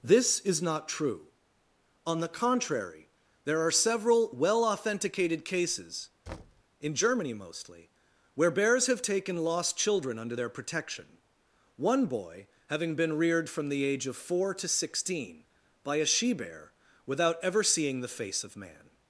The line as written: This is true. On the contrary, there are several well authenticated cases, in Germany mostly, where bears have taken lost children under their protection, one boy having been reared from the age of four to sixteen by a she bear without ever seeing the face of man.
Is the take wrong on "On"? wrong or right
right